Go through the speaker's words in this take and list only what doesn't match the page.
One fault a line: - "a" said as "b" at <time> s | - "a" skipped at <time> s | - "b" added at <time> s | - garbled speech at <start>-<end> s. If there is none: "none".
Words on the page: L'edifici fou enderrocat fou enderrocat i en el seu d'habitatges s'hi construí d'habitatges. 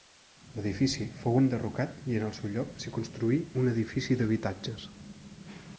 - "fou enderrocat" skipped at 2.0 s
- "d'habitatges" said as "lloc" at 2.5 s
- "un edifici" added at 3.6 s